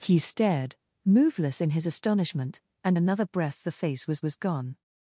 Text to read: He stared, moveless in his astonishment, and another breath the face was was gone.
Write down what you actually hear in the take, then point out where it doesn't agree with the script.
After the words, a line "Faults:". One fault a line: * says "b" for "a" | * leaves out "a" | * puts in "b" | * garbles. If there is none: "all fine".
He stared, moveless in his astonishment, and another breath the face was was gone.
Faults:
all fine